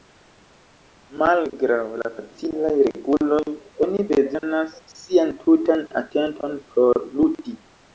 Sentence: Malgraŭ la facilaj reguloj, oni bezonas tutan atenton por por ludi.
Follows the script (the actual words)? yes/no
no